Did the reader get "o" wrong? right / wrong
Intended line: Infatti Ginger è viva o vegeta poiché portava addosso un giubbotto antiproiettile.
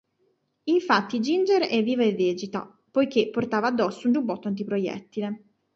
wrong